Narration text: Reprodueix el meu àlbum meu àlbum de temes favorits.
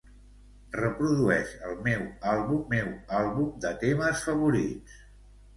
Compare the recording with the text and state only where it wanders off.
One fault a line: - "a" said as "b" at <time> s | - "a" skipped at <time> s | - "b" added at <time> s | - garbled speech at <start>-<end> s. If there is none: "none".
none